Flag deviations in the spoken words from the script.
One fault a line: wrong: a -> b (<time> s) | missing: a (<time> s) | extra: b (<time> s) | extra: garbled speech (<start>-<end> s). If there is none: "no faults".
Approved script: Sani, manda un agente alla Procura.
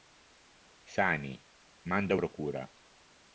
missing: un agente alla (2.1 s)